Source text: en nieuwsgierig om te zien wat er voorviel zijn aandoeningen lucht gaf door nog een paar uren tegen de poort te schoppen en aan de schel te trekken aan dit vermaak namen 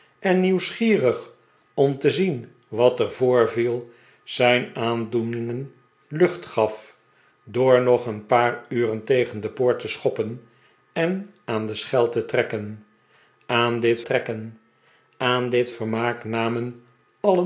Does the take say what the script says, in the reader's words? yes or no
no